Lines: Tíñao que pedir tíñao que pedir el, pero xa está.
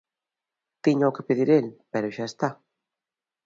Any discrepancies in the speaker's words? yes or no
yes